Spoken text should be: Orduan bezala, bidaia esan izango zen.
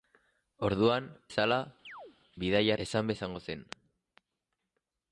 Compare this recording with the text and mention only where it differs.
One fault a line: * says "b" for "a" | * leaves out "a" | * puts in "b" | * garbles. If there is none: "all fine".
all fine